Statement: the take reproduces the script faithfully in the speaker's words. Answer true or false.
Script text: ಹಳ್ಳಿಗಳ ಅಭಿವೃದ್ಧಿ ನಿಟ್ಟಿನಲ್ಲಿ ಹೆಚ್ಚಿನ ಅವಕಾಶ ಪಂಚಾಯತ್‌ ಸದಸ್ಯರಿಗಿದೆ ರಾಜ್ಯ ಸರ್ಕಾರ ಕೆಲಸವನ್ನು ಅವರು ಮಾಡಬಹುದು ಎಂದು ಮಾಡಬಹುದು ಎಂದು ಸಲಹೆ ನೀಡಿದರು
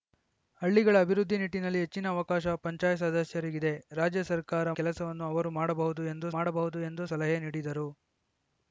true